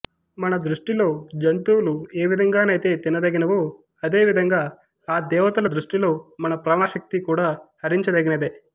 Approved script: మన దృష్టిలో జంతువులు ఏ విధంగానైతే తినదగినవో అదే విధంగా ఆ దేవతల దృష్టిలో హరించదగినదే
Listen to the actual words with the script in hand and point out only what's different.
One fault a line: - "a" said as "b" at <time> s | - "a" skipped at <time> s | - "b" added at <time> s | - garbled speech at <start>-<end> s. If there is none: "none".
- "మన ప్రాణశక్తి కూడా" added at 6.4 s